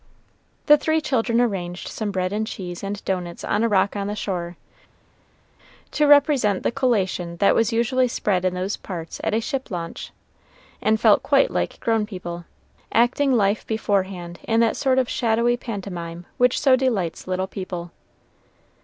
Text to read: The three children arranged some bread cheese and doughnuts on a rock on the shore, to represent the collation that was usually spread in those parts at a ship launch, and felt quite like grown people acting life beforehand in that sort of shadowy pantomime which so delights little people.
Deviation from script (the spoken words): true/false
true